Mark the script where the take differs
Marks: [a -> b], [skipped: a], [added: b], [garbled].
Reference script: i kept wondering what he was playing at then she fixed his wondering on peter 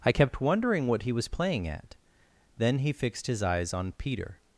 i kept wondering what he was playing at then [she -> he] fixed his [wondering -> eyes] on peter